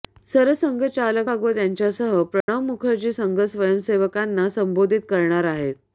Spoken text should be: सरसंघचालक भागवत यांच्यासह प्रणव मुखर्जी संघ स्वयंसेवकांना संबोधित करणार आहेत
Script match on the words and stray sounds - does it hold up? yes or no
no